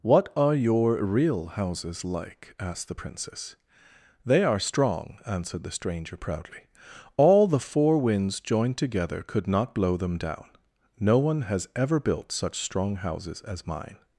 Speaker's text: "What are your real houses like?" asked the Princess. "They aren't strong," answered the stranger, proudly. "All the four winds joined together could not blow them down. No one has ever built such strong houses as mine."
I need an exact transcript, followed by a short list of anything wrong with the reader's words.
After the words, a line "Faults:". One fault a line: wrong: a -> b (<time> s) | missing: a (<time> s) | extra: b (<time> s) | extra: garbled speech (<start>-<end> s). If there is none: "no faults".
"What are your real houses like?" asked the Princess. "They are strong," answered the stranger, proudly. "All the four winds joined together could not blow them down. No one has ever built such strong houses as mine."
Faults:
wrong: aren't -> are (4.5 s)